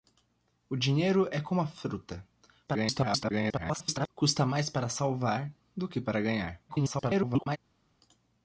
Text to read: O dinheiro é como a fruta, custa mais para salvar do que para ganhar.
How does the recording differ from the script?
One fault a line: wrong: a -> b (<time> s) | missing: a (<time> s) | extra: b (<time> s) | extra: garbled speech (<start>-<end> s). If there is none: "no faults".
extra: garbled speech (2.7-4.1 s)
extra: garbled speech (6.7-7.6 s)